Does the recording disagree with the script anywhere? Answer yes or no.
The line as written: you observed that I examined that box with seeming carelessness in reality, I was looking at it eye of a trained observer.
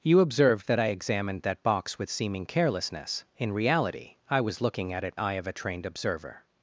no